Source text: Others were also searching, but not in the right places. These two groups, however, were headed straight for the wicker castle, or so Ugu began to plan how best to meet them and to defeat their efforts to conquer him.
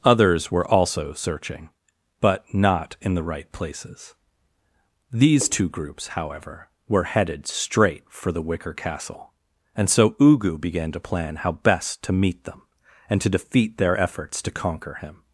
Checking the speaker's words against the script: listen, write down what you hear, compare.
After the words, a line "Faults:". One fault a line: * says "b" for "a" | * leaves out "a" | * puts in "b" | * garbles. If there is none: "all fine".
Others were also searching, but not in the right places. These two groups, however, were headed straight for the wicker castle, and so Ugu began to plan how best to meet them and to defeat their efforts to conquer him.
Faults:
* says "and" for "or"